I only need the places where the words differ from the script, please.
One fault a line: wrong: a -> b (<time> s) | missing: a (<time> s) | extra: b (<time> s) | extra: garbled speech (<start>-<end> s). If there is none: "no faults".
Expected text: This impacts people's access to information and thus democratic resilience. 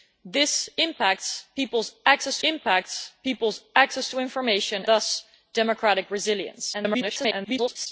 extra: impacts people's access (2.4 s)
missing: and (4.8 s)
extra: garbled speech (6.7-7.9 s)